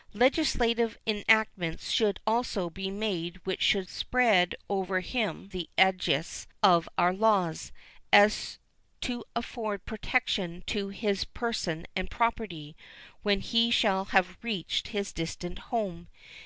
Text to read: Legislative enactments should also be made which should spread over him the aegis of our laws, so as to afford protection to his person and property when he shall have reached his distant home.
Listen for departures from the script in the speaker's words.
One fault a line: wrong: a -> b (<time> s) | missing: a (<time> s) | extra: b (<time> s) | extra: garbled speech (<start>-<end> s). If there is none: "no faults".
no faults